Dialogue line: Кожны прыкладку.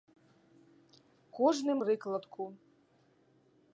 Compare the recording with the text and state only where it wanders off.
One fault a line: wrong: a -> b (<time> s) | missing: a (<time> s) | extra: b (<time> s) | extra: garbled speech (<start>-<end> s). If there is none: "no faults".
no faults